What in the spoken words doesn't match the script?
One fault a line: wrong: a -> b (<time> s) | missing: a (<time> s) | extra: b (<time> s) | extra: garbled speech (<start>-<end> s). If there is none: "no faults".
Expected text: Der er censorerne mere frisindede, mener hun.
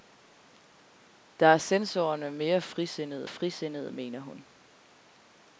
extra: frisindede (3.3 s)